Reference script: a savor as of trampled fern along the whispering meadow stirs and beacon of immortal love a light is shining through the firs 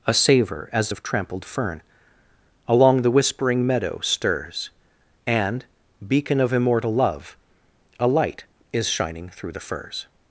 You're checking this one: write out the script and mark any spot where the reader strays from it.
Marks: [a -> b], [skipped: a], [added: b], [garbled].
a savor as of trampled fern along the whispering meadow stirs and beacon of immortal love a light is shining through the firs